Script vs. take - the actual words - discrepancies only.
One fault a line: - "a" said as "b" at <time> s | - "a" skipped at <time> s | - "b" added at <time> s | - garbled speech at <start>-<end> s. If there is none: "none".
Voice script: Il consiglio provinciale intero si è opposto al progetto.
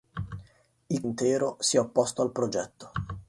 - "consiglio provinciale" skipped at 1.0 s